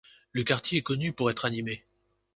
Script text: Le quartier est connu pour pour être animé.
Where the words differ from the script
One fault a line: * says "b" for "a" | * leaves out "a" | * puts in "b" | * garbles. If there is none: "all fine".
* leaves out "pour"